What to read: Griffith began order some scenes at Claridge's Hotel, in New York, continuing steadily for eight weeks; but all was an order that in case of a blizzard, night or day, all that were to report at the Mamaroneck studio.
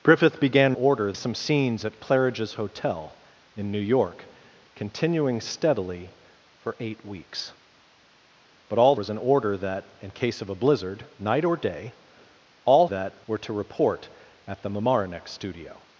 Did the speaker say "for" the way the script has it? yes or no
yes